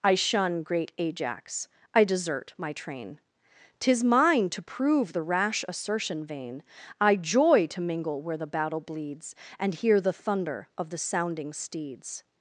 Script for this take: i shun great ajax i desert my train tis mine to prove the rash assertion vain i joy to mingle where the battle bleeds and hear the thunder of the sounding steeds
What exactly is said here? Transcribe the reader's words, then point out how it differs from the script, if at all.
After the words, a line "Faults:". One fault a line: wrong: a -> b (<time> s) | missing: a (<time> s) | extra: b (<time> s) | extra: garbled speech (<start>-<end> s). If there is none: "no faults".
i shun great ajax i desert my train tis mine to prove the rash assertion vain i joy to mingle where the battle bleeds and hear the thunder of the sounding steeds
Faults:
no faults